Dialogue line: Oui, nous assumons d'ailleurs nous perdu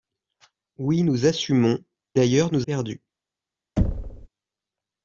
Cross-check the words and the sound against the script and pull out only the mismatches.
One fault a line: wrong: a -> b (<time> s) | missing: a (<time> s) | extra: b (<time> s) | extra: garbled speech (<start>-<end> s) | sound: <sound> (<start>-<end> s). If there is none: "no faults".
sound: thud (3.8-4.3 s)